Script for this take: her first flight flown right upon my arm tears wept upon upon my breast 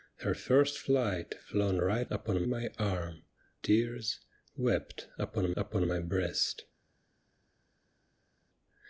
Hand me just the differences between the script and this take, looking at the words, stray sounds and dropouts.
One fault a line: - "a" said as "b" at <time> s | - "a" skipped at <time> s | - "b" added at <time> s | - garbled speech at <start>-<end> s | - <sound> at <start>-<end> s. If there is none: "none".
none